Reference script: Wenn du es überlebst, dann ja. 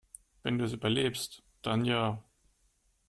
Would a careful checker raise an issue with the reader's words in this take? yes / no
no